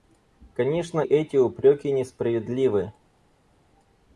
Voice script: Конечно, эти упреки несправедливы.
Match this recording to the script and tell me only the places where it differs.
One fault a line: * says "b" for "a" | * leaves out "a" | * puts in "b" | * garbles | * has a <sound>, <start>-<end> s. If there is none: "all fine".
all fine